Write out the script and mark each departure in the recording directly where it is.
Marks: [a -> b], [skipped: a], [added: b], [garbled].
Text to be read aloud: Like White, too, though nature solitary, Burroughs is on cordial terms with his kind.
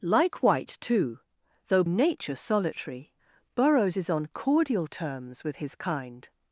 Like White, too, though nature solitary, Burroughs is on cordial terms with his kind.